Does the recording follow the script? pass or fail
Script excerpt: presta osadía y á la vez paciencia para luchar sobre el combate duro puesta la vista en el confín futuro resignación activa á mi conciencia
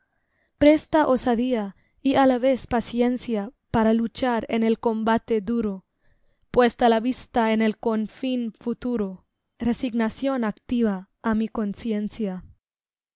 fail